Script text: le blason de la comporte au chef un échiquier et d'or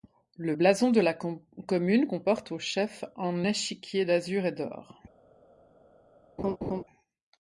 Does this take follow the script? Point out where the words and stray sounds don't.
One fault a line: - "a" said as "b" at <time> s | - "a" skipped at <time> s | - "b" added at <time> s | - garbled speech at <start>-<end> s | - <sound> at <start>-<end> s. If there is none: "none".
- "commune" added at 1.1 s
- "d'azur" added at 4.0 s
- laugh at 6.4-6.8 s